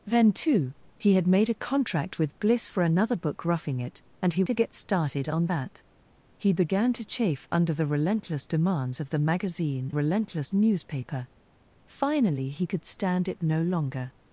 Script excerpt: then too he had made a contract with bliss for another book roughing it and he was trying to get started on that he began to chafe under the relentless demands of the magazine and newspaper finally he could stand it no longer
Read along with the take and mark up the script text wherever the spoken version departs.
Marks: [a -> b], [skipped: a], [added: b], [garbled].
then too he had made a contract with bliss for another book roughing it and he [skipped: was trying] to get started on that he began to chafe under the relentless demands of the magazine [and -> relentless] newspaper finally he could stand it no longer